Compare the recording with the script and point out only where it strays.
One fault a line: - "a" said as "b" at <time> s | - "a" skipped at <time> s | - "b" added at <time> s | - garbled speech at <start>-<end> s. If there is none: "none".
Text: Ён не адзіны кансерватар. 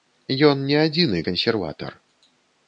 none